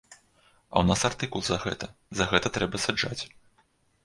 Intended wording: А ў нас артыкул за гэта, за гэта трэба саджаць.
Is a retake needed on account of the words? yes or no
no